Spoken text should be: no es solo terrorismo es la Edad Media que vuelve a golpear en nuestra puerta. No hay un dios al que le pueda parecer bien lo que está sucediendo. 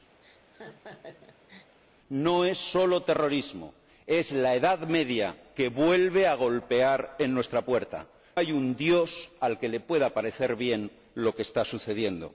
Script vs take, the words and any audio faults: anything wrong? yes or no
yes